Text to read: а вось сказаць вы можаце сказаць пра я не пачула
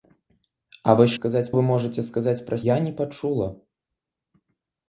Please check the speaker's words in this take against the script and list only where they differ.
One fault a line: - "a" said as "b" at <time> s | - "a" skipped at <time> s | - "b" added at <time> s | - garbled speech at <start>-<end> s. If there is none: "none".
none